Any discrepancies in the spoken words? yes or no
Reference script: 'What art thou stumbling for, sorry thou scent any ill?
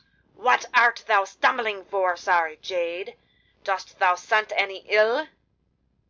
yes